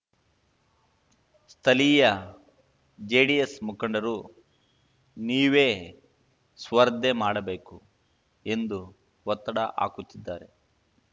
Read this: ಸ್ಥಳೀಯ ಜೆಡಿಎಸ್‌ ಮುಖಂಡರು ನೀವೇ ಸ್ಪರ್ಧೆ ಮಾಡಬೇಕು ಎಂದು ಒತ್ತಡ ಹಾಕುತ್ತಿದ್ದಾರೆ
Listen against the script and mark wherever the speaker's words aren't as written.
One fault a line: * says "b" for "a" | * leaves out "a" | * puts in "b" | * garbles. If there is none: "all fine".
all fine